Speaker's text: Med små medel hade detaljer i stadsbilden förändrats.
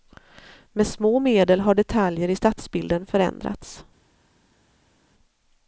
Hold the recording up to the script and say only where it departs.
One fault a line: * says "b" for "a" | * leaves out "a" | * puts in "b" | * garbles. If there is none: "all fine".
* says "har" for "hade"